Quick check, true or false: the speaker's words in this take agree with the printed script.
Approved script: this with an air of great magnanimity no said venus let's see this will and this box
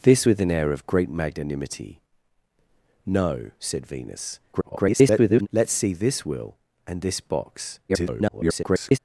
false